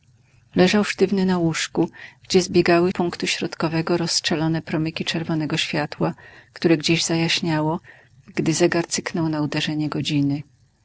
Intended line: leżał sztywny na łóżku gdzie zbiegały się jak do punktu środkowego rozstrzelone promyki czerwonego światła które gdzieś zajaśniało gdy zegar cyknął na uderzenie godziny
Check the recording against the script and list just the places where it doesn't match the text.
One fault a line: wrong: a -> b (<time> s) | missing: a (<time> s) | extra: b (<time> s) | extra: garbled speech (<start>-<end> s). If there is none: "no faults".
missing: się jak do (2.9 s)